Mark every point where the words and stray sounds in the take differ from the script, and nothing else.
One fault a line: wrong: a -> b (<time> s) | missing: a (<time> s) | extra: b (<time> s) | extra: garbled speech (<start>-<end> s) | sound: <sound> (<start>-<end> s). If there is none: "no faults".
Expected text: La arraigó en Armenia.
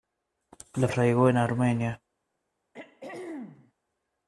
sound: throat clearing (2.7-3.7 s)